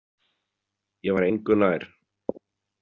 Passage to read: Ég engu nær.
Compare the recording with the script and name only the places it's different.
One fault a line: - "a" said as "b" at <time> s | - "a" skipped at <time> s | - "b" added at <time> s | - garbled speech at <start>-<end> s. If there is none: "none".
- "var" added at 1.2 s